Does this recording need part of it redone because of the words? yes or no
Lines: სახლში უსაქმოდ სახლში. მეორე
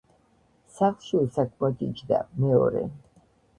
yes